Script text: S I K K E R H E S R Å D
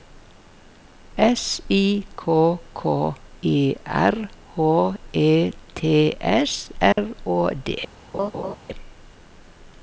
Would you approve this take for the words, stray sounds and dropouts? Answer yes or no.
no